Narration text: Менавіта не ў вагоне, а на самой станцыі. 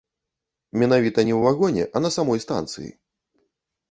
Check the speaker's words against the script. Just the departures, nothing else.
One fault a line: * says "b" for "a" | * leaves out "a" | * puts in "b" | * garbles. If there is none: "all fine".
all fine